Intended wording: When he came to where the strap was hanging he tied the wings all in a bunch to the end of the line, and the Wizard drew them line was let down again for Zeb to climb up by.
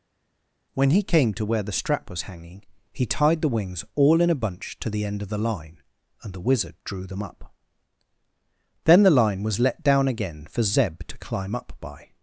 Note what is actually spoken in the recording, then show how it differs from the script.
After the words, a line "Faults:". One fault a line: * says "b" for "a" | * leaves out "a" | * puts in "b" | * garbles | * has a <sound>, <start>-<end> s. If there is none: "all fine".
When he came to where the strap was hanging he tied the wings all in a bunch to the end of the line, and the Wizard drew them up. Then the line was let down again for Zeb to climb up by.
Faults:
* puts in "up Then the"